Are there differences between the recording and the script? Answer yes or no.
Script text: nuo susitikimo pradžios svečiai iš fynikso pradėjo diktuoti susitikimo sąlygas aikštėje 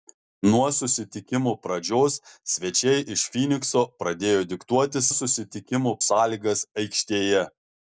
no